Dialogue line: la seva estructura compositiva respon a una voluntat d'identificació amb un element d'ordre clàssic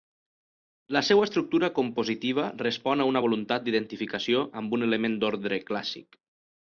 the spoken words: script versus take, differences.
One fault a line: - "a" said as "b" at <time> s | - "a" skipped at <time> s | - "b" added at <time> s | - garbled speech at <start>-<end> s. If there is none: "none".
none